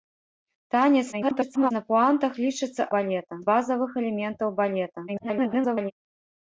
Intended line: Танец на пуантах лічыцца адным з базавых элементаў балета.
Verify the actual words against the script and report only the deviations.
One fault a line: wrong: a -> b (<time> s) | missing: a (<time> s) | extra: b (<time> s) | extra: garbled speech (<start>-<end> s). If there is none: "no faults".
extra: garbled speech (1.1-1.7 s)
wrong: адным -> балета (3.0 s)
extra: garbled speech (5.1-5.9 s)